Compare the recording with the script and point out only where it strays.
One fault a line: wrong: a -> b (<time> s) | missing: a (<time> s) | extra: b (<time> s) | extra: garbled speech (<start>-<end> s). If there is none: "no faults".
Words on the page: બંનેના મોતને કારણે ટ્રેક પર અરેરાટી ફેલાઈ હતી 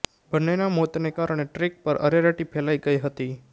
extra: ગઈ (2.8 s)